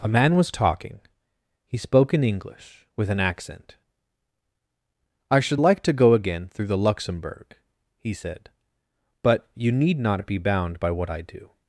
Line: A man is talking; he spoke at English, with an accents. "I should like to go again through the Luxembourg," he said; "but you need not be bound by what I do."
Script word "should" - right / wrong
right